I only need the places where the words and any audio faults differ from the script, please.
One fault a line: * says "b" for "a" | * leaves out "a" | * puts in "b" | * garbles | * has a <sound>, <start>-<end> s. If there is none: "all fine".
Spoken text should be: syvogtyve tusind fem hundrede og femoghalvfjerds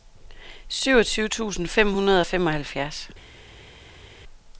all fine